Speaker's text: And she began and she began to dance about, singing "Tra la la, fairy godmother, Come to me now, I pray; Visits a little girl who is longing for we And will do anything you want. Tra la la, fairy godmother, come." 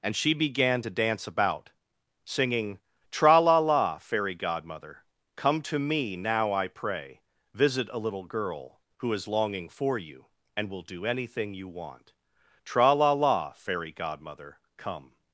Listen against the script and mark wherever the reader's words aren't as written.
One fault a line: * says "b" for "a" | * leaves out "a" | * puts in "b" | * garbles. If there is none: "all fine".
* leaves out "and she began"
* says "Visit" for "Visits"
* says "you" for "we"